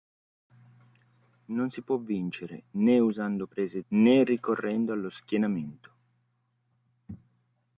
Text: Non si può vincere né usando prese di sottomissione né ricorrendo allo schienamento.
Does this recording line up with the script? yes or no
no